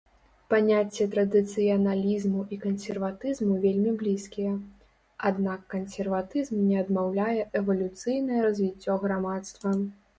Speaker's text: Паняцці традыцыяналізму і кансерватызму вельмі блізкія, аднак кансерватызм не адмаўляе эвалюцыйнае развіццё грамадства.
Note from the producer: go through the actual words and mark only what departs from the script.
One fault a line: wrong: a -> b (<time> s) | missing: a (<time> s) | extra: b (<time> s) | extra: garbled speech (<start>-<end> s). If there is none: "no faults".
no faults